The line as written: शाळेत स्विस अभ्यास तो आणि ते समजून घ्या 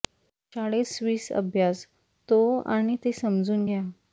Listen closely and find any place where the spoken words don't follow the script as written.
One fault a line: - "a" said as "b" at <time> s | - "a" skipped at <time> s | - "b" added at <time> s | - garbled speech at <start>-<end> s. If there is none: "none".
none